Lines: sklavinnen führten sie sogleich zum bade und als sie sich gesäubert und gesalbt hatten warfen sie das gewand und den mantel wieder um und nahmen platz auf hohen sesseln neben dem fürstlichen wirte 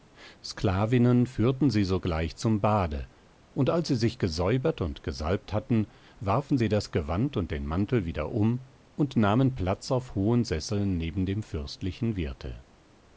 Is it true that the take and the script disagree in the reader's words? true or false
false